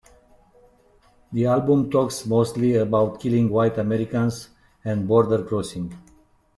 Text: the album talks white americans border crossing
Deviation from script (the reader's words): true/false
true